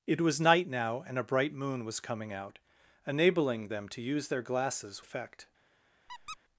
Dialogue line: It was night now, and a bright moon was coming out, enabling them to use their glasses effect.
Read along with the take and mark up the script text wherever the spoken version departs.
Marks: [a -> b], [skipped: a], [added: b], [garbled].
It was night now, and a bright moon was coming out, enabling them to use their glasses effect.